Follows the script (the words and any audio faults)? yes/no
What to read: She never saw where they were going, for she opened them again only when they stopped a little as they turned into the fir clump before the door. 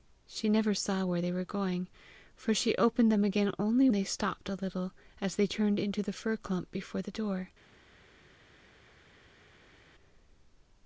no